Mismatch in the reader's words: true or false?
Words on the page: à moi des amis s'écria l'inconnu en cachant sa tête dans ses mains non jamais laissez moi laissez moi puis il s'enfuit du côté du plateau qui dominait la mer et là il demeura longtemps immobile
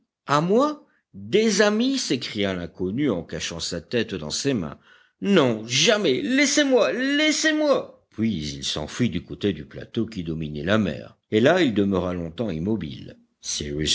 false